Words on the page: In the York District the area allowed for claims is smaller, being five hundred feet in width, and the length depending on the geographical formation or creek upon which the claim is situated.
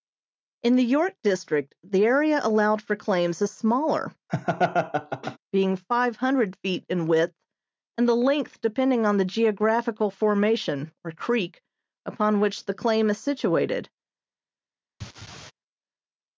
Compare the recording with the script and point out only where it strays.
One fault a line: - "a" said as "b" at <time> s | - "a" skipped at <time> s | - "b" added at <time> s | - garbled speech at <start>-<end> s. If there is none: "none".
none